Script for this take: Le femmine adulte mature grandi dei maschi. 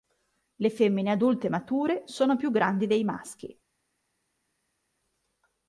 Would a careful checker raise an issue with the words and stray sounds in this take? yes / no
yes